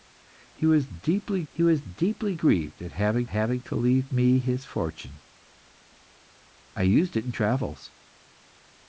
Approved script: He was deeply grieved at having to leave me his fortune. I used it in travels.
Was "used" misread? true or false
false